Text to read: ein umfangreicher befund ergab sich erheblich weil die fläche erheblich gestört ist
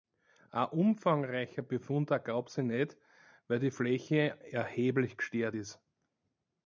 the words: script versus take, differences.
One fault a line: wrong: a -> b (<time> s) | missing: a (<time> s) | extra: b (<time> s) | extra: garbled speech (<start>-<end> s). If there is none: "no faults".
wrong: erheblich -> nicht (2.6 s)